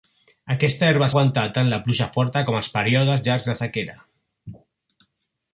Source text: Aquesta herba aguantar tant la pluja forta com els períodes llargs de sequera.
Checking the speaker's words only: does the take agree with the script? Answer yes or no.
yes